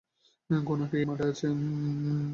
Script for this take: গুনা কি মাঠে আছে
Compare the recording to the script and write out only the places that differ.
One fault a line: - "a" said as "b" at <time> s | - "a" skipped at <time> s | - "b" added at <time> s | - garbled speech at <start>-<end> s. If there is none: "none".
none